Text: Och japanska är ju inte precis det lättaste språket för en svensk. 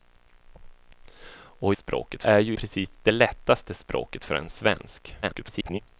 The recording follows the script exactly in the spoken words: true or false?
false